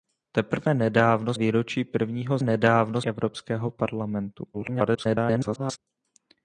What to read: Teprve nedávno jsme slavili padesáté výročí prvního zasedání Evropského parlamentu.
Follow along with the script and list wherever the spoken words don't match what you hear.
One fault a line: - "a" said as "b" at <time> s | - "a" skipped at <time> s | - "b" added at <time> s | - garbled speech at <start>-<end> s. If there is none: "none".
- "jsme slavili padesáté" skipped at 1.3 s
- "zasedání" said as "nedávno" at 2.4 s
- garbled speech at 4.5-5.8 s